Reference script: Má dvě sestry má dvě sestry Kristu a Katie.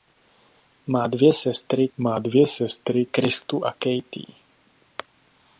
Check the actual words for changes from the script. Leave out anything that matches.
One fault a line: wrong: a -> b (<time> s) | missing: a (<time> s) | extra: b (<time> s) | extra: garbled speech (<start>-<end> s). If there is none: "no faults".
no faults